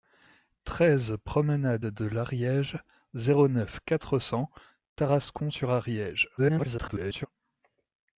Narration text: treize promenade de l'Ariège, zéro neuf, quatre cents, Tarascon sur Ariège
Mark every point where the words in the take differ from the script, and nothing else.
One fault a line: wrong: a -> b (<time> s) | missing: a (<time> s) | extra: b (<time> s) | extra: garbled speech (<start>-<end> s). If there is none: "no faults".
extra: garbled speech (6.4-7.3 s)